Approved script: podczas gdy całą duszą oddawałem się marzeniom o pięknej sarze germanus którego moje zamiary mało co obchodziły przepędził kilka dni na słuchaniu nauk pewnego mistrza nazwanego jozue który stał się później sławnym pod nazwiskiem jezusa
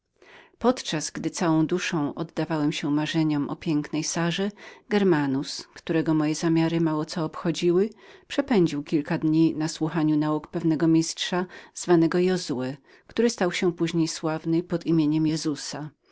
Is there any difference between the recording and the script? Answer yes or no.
no